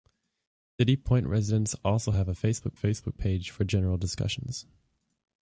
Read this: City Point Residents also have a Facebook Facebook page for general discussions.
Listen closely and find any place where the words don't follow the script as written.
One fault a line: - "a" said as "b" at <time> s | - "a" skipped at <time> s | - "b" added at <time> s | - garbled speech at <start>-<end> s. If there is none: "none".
none